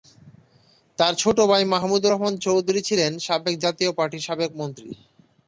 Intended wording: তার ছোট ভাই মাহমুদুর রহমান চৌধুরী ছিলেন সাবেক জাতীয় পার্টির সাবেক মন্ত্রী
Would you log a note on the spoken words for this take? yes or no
no